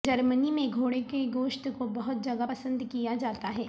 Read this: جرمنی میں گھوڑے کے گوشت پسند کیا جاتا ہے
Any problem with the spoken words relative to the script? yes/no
yes